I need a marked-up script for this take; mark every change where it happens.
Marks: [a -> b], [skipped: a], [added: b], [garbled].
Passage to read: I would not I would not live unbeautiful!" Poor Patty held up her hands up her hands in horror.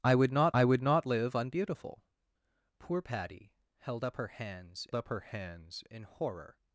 I would not I would not live unbeautiful!" Poor Patty held up her hands up her hands in horror.